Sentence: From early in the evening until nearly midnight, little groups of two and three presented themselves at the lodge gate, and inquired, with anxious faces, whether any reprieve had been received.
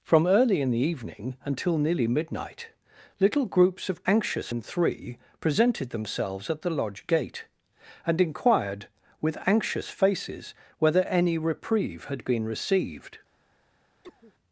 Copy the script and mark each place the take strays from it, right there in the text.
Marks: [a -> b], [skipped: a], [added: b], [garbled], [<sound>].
From early in the evening until nearly midnight, little groups of [two -> anxious] and three presented themselves at the lodge gate, and inquired, with anxious faces, whether any reprieve had been received. [cough]